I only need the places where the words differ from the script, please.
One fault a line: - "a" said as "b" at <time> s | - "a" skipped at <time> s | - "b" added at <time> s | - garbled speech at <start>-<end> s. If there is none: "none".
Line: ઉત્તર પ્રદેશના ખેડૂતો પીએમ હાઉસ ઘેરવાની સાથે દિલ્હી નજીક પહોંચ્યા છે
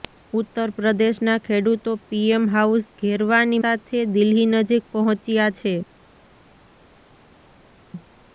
none